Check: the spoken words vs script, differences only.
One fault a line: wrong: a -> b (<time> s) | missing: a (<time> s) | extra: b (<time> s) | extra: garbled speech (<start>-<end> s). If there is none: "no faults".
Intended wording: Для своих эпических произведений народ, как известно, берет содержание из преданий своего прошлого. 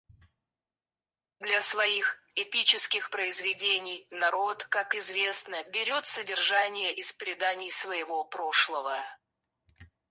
no faults